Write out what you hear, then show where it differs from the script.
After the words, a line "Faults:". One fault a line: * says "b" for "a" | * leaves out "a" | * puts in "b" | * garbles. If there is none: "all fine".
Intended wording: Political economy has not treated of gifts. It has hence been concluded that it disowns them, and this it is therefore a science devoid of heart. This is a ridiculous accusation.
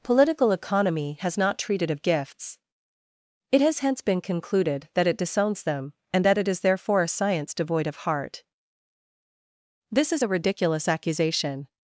Political economy has not treated of gifts. It has hence been concluded that it disowns them, and that it is therefore a science devoid of heart. This is a ridiculous accusation.
Faults:
* says "that" for "this"